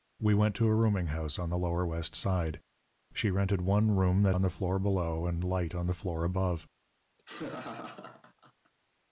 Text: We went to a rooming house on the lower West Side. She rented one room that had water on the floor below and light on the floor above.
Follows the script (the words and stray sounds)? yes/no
no